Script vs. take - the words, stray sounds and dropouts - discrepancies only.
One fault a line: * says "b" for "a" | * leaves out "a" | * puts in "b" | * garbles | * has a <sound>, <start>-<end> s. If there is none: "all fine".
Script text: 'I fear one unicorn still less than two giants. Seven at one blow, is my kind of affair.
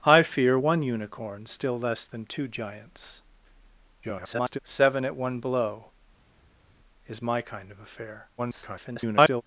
* garbles
* garbles